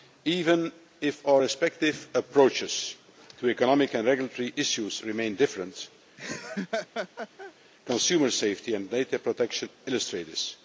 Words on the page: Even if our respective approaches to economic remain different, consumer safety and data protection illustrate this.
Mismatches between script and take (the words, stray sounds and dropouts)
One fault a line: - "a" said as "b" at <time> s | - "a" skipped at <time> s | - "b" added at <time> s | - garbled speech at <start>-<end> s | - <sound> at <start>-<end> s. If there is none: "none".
- "and regulatory issues" added at 3.9 s
- laugh at 6.2-7.5 s